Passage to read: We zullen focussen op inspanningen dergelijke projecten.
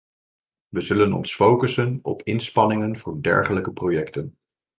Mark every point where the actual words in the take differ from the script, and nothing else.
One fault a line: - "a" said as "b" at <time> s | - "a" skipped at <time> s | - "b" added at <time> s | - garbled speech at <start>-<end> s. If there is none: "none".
- "ons" added at 1.1 s
- "voor" added at 3.0 s